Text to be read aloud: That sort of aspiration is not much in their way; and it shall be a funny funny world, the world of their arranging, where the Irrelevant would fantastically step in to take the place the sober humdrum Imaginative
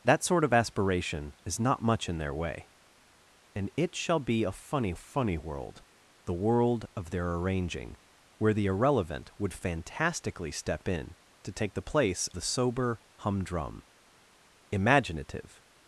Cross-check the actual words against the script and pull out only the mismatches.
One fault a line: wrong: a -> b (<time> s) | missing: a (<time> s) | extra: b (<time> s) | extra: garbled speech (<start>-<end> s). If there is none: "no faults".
no faults